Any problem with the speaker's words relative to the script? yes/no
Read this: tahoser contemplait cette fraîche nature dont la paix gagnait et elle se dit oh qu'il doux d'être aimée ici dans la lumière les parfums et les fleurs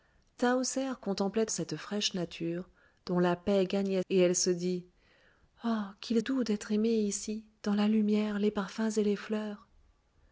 no